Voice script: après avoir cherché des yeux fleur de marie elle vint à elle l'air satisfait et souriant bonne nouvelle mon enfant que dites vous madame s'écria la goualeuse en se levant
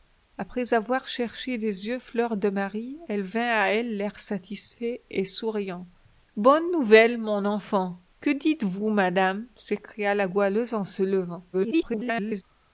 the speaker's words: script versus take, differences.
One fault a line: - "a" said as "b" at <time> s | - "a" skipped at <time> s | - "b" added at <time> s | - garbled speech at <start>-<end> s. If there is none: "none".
- garbled speech at 11.5-12.4 s